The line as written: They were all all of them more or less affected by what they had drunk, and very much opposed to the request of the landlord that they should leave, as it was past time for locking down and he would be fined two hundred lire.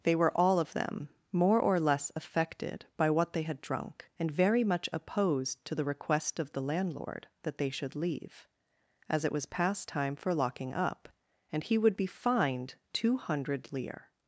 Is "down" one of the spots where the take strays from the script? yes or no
yes